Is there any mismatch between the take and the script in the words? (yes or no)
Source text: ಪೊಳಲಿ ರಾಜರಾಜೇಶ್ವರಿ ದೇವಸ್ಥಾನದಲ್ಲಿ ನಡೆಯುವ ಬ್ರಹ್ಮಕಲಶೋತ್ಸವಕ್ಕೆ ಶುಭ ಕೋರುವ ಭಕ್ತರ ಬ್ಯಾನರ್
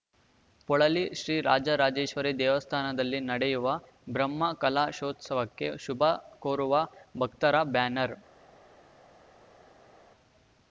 yes